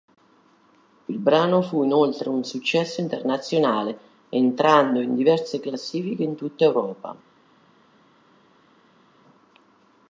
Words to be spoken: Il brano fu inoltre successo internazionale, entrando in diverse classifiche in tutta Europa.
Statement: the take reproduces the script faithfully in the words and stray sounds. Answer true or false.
false